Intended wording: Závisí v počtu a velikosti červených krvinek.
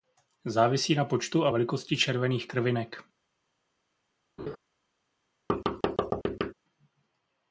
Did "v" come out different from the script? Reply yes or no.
yes